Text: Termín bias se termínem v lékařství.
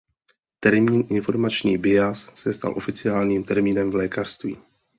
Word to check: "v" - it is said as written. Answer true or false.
true